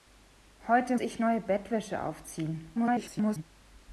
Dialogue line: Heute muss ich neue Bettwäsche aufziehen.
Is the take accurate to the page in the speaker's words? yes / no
no